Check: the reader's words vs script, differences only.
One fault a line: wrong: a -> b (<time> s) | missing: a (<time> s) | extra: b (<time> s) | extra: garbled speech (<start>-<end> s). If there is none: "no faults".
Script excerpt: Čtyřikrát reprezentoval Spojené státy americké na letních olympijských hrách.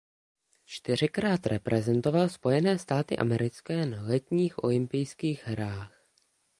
no faults